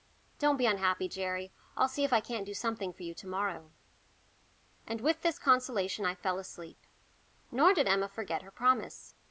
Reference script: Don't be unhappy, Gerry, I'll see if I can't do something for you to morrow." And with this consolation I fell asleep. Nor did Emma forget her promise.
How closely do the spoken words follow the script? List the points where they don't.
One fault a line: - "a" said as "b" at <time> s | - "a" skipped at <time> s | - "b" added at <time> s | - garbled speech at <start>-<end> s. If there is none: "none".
none